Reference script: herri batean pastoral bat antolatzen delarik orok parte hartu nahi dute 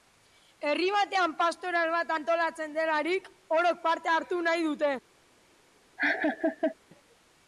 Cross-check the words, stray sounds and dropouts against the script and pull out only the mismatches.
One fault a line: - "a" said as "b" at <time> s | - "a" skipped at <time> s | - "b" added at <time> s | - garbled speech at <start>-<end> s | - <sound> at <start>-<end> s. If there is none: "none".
- laugh at 6.0-6.8 s